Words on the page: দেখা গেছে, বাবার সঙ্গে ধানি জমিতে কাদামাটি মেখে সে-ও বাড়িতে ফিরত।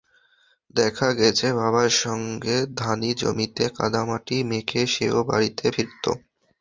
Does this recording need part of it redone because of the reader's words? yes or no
no